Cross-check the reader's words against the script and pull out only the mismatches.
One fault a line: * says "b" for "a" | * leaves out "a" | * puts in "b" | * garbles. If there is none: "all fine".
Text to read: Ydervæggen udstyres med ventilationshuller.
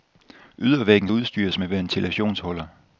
all fine